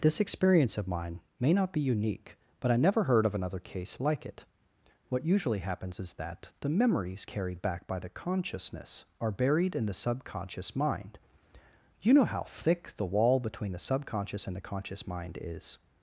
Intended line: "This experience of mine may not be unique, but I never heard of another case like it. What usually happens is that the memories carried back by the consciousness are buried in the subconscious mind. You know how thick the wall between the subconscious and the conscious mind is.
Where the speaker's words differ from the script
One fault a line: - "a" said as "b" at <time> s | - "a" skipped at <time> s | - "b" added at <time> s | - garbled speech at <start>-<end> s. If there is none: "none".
none